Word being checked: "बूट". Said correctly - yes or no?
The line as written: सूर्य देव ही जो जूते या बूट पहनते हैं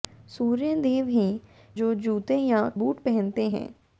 yes